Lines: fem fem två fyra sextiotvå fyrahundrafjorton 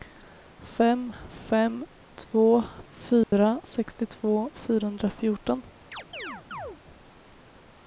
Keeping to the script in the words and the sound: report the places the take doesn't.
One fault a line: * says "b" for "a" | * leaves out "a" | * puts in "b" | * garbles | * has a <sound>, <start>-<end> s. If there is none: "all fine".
* has a dropout, 3.2-3.3 s
* has a chirp, 5.9-6.8 s